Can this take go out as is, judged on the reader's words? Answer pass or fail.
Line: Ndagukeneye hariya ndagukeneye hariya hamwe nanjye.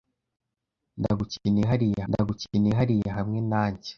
pass